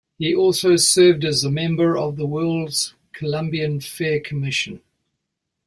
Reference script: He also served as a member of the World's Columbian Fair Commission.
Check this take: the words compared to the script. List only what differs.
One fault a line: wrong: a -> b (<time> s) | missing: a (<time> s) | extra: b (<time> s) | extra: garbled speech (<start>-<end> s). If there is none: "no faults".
no faults